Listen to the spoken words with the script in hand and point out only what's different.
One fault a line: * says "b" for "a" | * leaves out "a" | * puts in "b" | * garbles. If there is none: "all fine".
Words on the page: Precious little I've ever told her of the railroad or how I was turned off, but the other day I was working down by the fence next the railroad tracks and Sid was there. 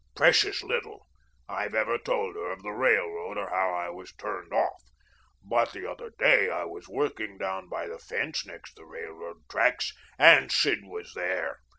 all fine